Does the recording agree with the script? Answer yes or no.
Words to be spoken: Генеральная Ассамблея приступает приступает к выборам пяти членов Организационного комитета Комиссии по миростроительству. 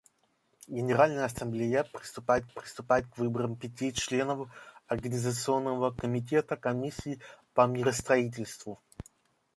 yes